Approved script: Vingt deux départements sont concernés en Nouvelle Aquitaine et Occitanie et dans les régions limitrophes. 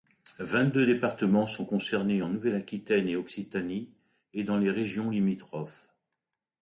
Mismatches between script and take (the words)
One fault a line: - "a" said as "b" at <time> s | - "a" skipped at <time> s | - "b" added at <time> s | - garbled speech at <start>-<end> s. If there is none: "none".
none